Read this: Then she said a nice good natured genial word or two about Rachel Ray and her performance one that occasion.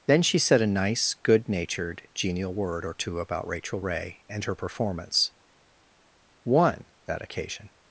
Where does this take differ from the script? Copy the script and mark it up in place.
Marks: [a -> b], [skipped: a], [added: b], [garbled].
Then she said a nice good natured genial word or two about Rachel Ray and her performance one that occasion.